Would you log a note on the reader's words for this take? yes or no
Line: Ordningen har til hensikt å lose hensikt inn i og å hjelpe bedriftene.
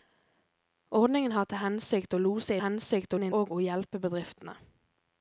no